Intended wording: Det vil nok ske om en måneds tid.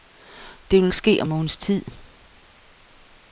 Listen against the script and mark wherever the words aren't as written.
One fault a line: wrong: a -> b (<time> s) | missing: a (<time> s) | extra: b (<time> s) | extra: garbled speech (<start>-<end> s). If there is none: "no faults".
missing: nok (0.9 s)
missing: en (1.3 s)